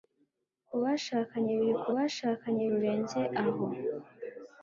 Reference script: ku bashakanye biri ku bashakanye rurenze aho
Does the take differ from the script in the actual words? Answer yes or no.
no